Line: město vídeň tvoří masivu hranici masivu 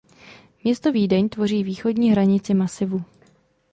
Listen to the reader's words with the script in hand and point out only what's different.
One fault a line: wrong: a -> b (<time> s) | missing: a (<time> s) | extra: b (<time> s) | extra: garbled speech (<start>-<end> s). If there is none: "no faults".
wrong: masivu -> východní (1.6 s)